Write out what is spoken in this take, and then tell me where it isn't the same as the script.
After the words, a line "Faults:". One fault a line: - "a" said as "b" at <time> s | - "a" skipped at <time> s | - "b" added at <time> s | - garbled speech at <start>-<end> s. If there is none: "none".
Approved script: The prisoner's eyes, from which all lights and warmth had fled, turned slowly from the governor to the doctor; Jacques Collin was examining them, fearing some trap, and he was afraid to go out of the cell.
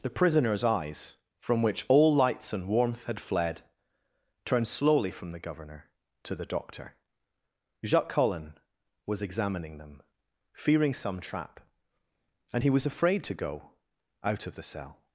The prisoner's eyes, from which all lights and warmth had fled, turned slowly from the governor to the doctor; Jacques Collin was examining them, fearing some trap, and he was afraid to go out of the cell.
Faults:
none